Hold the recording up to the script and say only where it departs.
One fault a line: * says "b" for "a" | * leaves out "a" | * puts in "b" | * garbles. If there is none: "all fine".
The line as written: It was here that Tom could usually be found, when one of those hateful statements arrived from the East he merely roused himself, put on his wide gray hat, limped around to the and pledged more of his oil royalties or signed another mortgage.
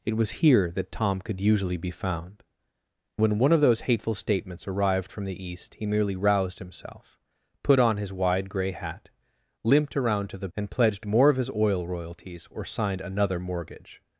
all fine